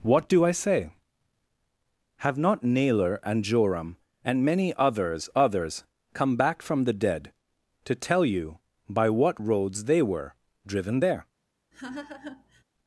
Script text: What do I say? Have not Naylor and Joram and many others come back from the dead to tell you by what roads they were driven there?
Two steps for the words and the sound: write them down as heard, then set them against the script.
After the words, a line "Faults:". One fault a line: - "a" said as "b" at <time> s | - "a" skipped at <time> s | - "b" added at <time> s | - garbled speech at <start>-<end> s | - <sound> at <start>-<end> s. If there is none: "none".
What do I say? Have not Naylor and Joram and many others others come back from the dead to tell you by what roads they were driven there?
Faults:
- "others" added at 5.3 s
- laugh at 11.7-12.6 s